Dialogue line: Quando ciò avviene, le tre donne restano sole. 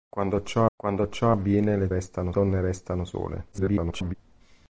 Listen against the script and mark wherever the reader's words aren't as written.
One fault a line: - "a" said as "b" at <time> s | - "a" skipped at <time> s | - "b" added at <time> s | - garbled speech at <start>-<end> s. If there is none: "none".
- "quando ciò" added at 0.8 s
- "tre" said as "restano" at 1.9 s
- garbled speech at 3.5-4.1 s